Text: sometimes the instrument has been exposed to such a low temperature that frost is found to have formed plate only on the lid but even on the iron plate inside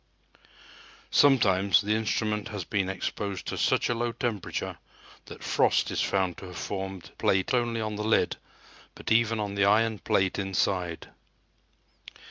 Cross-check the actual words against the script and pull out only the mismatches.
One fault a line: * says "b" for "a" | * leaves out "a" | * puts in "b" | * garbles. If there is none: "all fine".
all fine